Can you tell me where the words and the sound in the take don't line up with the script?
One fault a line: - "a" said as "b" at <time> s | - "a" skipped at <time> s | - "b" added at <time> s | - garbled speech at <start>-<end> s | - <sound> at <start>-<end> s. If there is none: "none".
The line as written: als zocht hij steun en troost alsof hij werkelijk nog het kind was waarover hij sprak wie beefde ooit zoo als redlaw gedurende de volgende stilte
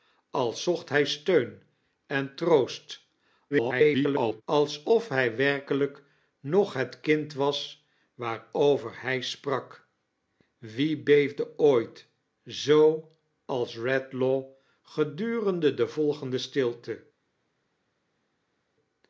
- garbled speech at 3.5-4.4 s